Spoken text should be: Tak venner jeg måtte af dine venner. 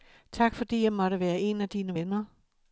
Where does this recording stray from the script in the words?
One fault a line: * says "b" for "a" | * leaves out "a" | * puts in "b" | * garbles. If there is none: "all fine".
* says "fordi" for "venner"
* puts in "være en"